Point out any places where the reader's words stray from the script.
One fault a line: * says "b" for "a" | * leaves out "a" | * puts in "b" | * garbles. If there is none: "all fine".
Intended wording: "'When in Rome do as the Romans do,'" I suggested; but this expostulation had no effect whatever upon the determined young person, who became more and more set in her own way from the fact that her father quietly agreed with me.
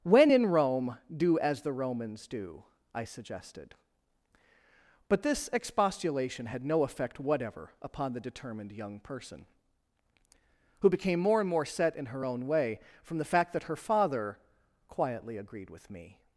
all fine